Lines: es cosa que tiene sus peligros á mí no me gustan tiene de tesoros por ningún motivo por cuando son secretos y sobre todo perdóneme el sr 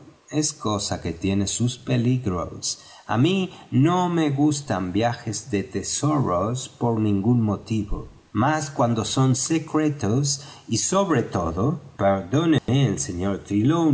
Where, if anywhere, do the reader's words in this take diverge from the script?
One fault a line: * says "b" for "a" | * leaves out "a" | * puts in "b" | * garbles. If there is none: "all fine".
* says "viajes" for "tiene"
* says "más" for "por"